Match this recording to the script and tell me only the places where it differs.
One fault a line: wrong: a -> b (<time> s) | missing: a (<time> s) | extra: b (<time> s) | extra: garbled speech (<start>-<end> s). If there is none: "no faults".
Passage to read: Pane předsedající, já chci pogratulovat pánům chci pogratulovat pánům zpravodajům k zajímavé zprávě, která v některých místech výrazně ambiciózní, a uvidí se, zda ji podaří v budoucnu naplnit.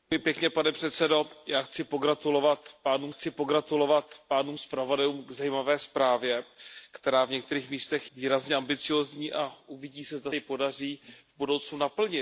no faults